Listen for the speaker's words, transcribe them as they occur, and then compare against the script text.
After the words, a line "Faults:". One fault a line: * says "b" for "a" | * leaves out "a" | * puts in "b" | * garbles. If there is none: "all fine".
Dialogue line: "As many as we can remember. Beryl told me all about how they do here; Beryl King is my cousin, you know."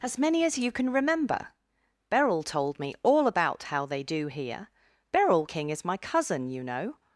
"As many as you can remember. Beryl told me all about how they do here; Beryl King is my cousin, you know."
Faults:
* says "you" for "we"